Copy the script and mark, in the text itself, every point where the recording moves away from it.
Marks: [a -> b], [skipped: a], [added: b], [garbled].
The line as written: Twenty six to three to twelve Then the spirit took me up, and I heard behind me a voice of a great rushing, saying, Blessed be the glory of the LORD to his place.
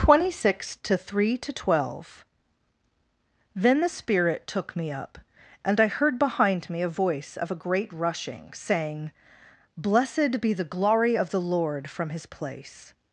Twenty six to three to twelve Then the spirit took me up, and I heard behind me a voice of a great rushing, saying, Blessed be the glory of the LORD [to -> from] his place.